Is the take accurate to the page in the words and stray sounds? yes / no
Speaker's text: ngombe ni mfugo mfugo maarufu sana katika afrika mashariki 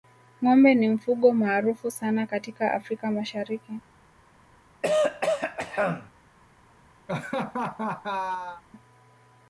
no